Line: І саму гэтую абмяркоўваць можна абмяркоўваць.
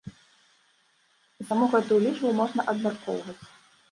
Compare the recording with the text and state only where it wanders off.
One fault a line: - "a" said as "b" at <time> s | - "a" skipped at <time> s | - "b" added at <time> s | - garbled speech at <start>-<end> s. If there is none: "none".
- "абмяркоўваць" said as "лічбу" at 2.1 s